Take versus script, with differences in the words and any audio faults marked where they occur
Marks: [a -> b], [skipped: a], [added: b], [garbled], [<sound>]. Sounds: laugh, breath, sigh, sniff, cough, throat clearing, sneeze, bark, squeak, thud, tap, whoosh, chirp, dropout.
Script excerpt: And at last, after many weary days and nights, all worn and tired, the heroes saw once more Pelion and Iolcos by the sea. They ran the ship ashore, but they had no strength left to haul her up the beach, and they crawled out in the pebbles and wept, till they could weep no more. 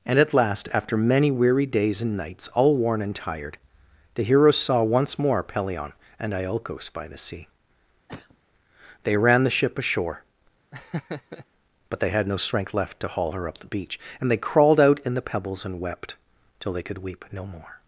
And at last, after many weary days and nights, all worn and tired, the heroes saw once more Pelion and Iolcos by the sea. [cough] They ran the ship ashore, [laugh] but they had no strength left to haul her up the beach, and they crawled out in the pebbles and wept, till they could weep no more.